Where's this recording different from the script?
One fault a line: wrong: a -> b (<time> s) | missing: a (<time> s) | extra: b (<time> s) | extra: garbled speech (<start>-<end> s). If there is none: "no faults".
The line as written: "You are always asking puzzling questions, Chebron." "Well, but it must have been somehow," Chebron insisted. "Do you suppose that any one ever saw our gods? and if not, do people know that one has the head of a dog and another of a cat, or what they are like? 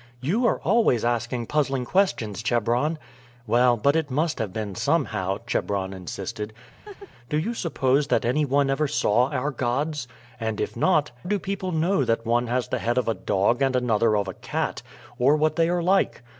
no faults